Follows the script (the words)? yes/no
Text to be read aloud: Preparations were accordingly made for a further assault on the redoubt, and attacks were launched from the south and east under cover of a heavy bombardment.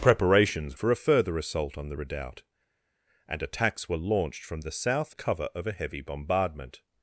no